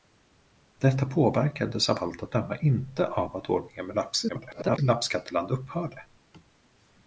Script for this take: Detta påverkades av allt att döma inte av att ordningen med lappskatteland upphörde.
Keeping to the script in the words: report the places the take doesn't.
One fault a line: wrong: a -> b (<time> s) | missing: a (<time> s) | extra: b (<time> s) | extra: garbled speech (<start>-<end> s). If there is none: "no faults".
extra: garbled speech (4.3-4.8 s)